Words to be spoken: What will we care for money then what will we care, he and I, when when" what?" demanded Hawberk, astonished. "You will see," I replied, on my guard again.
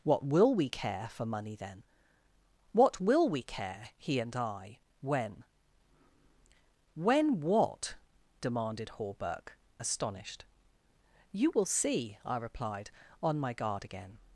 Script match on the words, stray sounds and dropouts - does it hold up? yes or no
yes